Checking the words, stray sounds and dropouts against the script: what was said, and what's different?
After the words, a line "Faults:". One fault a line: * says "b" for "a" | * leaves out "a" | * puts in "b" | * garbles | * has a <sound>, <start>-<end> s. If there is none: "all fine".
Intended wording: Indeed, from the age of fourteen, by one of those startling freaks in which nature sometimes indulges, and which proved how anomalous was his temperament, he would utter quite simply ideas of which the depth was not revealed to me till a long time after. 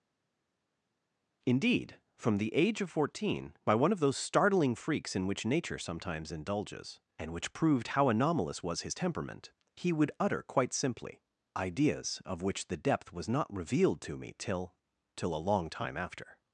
Indeed, from the age of fourteen, by one of those startling freaks in which nature sometimes indulges, and which proved how anomalous was his temperament, he would utter quite simply ideas of which the depth was not revealed to me till till a long time after.
Faults:
* puts in "till"